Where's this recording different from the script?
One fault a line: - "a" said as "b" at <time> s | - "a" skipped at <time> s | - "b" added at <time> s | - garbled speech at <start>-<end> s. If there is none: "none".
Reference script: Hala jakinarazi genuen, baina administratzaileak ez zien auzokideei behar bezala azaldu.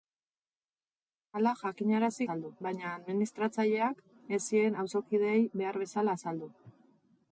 - "genuen" said as "azaldu" at 2.2 s